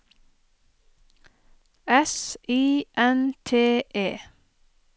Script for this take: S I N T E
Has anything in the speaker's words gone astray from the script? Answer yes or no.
no